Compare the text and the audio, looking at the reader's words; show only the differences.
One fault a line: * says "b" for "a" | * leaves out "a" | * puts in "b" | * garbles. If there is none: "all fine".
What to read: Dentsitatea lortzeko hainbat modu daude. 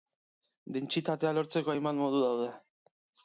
all fine